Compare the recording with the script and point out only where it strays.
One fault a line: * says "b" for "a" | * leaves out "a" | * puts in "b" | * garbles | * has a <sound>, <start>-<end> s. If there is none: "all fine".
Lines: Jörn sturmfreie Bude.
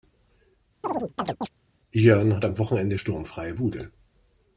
* has a chirp, 0.8-1.5 s
* puts in "hat am Wochenende"